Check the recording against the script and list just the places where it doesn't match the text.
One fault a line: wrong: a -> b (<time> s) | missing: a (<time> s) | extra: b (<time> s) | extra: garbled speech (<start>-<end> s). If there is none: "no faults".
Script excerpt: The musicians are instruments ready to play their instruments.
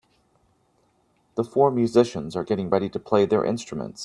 extra: four (1.4 s)
wrong: instruments -> getting (2.4 s)